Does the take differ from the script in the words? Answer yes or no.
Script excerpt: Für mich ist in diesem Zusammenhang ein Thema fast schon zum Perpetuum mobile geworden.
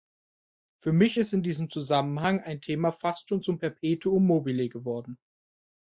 no